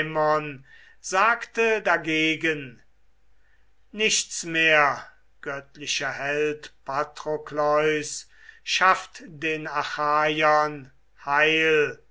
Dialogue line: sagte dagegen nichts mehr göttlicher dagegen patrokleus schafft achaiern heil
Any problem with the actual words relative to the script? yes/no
yes